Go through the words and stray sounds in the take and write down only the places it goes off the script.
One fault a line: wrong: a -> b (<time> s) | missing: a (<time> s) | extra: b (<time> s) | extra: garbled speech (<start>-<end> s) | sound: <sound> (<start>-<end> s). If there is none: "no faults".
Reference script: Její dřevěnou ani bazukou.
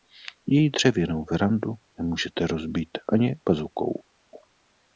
extra: verandu nemůžete rozbít (1.3 s)